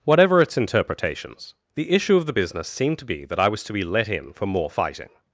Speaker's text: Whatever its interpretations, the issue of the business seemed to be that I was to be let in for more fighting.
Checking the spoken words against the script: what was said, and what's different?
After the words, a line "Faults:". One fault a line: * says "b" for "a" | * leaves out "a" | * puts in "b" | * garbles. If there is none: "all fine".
Whatever its interpretations, the issue of the business seemed to be that I was to be let in for more fighting.
Faults:
all fine